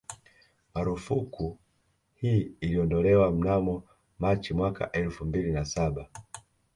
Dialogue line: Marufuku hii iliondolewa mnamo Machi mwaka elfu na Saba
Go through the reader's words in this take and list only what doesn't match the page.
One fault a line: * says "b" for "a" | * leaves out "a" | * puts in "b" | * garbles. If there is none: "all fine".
* puts in "mbili"